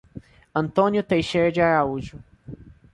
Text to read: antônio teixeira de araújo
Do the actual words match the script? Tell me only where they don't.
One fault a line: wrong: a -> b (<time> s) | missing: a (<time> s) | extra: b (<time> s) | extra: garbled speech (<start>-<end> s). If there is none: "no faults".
no faults